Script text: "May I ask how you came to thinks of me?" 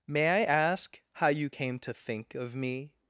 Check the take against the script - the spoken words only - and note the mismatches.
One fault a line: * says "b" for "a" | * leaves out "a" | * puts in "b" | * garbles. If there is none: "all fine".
* says "think" for "thinks"